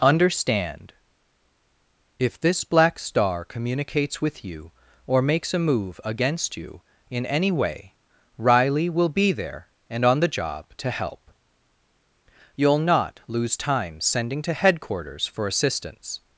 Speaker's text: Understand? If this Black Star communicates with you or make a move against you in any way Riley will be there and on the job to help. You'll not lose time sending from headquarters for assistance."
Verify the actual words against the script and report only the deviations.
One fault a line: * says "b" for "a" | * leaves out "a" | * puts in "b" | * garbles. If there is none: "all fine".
* says "makes" for "make"
* says "to" for "from"